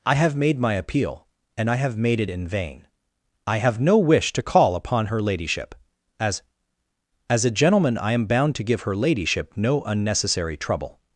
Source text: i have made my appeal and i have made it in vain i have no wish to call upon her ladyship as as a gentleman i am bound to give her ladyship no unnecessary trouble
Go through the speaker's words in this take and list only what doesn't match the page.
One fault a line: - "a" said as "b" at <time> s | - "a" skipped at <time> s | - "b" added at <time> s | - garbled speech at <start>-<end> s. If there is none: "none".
none